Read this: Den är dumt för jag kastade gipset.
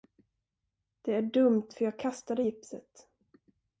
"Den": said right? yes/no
no